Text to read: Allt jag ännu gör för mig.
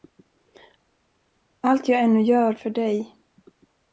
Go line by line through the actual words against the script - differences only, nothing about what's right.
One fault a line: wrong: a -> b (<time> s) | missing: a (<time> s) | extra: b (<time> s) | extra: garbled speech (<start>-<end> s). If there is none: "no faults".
wrong: mig -> dig (2.7 s)